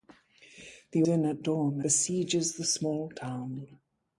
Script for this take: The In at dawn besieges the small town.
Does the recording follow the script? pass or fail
pass